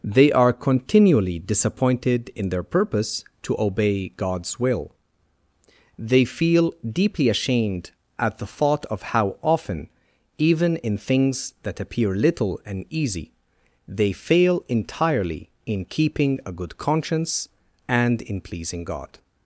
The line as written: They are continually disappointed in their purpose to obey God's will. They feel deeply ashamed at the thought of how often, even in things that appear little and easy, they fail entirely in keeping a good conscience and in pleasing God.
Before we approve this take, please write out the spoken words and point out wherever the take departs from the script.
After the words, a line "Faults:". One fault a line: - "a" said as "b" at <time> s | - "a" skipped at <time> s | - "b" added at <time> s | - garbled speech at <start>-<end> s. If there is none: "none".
They are continually disappointed in their purpose to obey God's will. They feel deeply ashamed at the thought of how often, even in things that appear little and easy, they fail entirely in keeping a good conscience and in pleasing God.
Faults:
none